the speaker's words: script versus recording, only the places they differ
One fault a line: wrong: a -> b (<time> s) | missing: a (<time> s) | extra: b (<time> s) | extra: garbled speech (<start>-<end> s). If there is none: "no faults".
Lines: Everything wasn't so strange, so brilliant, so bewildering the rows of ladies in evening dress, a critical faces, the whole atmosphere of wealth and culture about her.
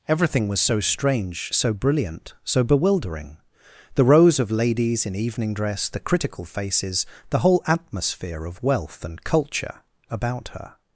wrong: wasn't -> was (0.5 s)
wrong: a -> the (5.9 s)